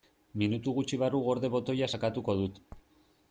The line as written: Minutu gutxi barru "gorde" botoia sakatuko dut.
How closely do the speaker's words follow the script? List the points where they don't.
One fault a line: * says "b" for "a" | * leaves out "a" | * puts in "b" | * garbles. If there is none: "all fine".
all fine